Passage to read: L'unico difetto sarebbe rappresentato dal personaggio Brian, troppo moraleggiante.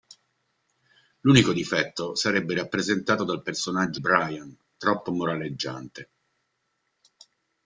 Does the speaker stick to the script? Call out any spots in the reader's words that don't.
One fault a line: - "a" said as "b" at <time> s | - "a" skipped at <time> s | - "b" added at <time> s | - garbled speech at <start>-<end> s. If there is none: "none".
none